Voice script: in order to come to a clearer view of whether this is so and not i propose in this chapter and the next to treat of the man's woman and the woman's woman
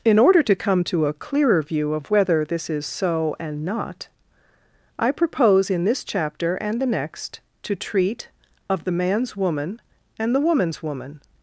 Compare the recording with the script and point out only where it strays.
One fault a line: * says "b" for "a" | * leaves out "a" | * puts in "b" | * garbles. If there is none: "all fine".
all fine